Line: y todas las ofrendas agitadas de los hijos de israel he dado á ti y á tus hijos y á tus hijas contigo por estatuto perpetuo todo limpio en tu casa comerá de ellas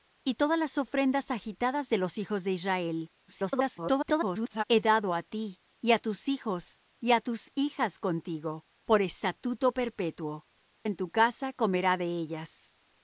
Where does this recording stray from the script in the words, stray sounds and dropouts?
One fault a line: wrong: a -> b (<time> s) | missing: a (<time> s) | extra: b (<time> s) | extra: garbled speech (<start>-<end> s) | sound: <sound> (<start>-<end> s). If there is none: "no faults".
extra: garbled speech (3.3-4.6 s)
missing: todo limpio (10.5 s)